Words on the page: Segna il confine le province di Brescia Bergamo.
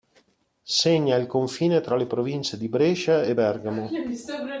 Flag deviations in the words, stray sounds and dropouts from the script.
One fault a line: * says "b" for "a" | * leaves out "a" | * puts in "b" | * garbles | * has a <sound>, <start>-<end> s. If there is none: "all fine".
* puts in "tra"
* puts in "e"